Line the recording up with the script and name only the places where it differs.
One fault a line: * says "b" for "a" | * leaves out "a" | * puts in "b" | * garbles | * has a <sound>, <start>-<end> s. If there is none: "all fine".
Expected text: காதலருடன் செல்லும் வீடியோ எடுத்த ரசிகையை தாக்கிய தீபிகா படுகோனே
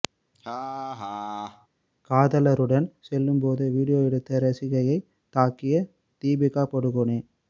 * has a laugh, 0.3-1.7 s
* puts in "போது"